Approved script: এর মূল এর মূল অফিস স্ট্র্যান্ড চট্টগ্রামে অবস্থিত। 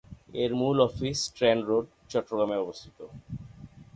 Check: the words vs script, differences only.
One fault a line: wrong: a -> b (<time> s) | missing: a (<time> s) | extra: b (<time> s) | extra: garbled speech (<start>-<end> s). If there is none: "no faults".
missing: এর মূল (0.8 s)
extra: রোড (1.7 s)